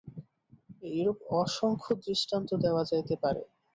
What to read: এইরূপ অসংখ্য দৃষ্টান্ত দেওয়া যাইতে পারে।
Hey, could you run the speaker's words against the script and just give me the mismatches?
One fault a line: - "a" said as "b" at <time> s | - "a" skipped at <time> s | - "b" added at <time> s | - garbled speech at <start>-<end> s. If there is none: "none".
none